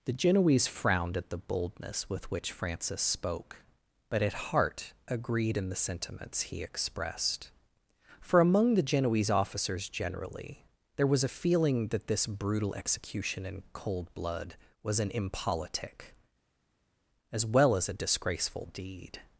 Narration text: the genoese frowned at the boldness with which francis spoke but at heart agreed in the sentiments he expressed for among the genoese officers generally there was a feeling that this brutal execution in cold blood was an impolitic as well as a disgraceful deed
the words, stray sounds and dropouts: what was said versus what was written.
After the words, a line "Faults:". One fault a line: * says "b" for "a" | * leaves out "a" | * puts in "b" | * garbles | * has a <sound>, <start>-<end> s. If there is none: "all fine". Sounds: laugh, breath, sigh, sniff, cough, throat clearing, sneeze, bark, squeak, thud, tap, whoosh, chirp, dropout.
the genoese frowned at the boldness with which francis spoke but at heart agreed in the sentiments he expressed for among the genoese officers generally there was a feeling that this brutal execution in cold blood was an impolitic as well as a disgraceful deed
Faults:
all fine